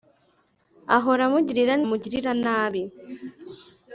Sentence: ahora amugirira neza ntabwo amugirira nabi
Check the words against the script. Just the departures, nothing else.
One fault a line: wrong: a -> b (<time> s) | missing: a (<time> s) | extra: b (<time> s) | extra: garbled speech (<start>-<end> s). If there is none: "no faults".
missing: neza ntabwo (1.8 s)